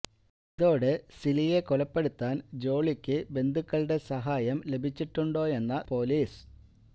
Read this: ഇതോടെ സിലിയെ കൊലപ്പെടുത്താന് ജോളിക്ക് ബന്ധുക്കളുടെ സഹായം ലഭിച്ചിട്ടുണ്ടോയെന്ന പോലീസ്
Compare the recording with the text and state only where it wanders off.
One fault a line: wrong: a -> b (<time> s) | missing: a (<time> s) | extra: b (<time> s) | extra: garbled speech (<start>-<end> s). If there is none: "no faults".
no faults